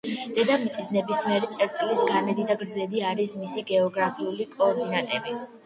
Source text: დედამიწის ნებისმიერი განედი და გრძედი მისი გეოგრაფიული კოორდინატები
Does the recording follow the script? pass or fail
fail